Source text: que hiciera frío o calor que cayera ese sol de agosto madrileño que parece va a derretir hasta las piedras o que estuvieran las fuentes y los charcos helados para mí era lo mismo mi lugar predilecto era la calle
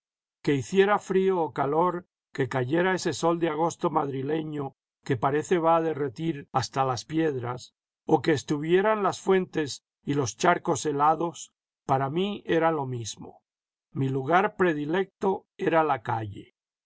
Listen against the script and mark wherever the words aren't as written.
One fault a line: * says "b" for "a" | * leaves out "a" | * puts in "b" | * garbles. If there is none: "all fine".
all fine